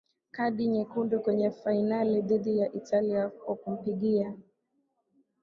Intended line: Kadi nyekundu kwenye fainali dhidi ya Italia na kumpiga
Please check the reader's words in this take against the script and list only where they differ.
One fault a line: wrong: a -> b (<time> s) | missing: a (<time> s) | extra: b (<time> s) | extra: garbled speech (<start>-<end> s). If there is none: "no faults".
wrong: na -> kwa (3.3 s)